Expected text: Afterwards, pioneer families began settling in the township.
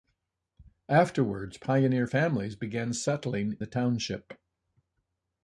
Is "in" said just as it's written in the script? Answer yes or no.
no